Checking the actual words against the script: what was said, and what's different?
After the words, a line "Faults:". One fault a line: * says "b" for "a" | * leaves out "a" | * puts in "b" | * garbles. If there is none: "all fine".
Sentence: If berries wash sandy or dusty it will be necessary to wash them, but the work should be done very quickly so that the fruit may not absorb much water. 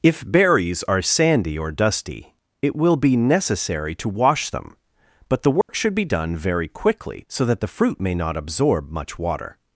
If berries are sandy or dusty it will be necessary to wash them, but the work should be done very quickly so that the fruit may not absorb much water.
Faults:
* says "are" for "wash"